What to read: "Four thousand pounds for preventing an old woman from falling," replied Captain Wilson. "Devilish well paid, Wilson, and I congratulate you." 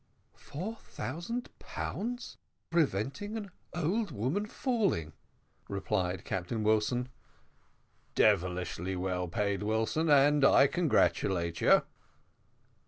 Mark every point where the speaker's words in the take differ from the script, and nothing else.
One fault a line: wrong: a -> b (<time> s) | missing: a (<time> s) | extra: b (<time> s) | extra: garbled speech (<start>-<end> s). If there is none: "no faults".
missing: for (2.4 s)
missing: from (4.5 s)